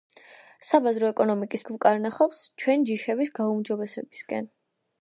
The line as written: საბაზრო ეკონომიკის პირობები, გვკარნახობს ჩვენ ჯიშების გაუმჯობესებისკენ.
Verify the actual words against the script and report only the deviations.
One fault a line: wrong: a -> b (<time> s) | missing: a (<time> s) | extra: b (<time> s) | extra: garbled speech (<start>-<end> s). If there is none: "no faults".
missing: პირობები (1.6 s)